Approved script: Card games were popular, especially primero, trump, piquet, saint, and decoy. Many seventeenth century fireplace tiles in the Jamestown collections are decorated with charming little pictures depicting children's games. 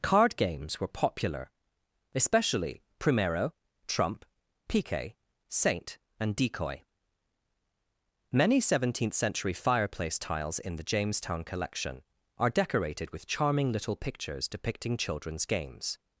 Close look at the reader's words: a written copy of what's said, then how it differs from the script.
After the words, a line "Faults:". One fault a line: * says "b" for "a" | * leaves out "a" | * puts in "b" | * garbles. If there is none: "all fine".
Card games were popular, especially primero, trump, piquet, saint, and decoy. Many seventeenth century fireplace tiles in the Jamestown collection are decorated with charming little pictures depicting children's games.
Faults:
* says "collection" for "collections"